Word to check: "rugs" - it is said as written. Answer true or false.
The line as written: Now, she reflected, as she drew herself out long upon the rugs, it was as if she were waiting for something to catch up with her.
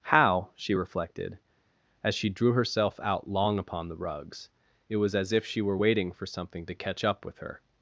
true